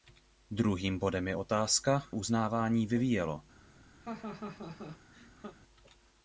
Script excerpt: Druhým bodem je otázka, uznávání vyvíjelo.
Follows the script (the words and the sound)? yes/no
no